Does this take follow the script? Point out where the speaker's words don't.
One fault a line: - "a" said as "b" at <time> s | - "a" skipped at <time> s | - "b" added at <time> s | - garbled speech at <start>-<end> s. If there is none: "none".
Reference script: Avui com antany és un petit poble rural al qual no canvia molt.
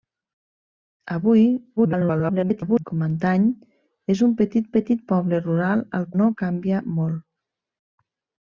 - garbled speech at 1.8-2.8 s
- "petit" added at 4.8 s
- "qual" skipped at 6.0 s